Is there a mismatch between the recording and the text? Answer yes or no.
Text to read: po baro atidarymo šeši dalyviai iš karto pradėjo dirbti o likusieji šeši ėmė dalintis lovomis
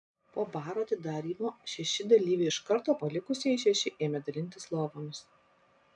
yes